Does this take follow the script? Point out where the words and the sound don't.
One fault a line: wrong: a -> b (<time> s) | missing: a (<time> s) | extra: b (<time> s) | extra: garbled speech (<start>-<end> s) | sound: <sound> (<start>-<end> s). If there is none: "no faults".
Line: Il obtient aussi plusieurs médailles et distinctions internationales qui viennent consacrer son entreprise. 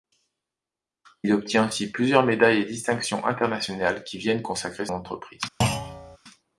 missing: son (4.9 s)
sound: thud (5.6-6.2 s)